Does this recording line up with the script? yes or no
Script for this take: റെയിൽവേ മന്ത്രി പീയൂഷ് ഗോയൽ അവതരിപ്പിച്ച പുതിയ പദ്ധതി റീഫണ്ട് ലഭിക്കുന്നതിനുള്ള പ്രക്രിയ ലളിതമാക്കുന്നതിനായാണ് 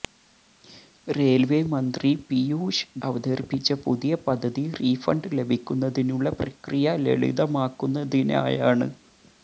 no